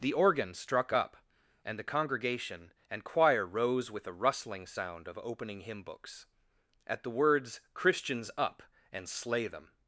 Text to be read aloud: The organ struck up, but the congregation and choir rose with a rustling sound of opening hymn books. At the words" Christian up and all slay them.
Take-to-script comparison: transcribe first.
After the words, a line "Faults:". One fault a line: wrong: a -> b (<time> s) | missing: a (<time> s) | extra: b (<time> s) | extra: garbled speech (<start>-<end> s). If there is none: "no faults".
The organ struck up, and the congregation and choir rose with a rustling sound of opening hymn books. At the words" Christians up and slay them.
Faults:
wrong: but -> and (1.6 s)
wrong: Christian -> Christians (7.7 s)
missing: all (9.1 s)